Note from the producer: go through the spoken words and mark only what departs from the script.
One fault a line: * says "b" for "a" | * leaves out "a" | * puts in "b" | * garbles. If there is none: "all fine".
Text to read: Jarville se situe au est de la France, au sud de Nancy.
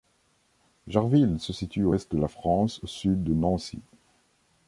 all fine